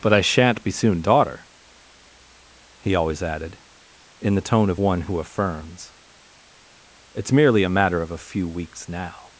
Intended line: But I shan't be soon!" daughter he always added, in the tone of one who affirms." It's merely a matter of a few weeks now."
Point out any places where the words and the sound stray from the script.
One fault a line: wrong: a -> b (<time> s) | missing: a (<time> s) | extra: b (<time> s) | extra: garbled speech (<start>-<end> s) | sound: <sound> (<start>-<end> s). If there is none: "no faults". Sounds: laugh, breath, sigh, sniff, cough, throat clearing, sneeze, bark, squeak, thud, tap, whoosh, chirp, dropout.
no faults